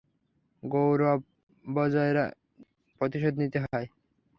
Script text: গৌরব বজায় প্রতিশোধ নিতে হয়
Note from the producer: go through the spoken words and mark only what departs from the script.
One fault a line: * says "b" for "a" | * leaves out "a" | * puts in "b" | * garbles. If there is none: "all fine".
all fine